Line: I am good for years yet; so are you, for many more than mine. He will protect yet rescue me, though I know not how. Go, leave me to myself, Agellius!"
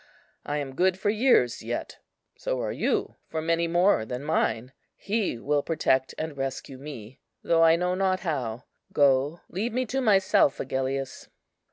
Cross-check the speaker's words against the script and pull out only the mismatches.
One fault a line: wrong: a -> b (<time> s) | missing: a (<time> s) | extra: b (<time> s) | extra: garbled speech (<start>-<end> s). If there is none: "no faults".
wrong: yet -> and (6.2 s)